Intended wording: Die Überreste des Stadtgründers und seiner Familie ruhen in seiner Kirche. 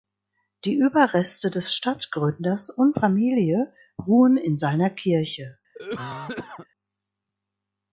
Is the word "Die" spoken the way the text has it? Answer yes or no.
yes